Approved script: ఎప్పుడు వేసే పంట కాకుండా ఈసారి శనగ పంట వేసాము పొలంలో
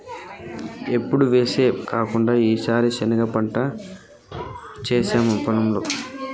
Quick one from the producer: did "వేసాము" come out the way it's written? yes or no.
yes